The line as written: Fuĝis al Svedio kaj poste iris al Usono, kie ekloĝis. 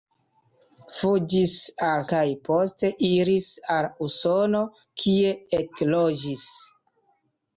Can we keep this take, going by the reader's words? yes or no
no